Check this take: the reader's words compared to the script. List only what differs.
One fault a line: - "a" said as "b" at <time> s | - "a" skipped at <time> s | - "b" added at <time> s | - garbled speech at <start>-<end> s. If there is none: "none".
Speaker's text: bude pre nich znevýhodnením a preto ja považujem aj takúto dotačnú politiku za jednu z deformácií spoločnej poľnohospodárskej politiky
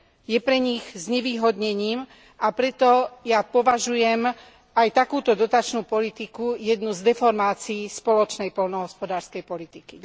- "bude" said as "je" at 0.2 s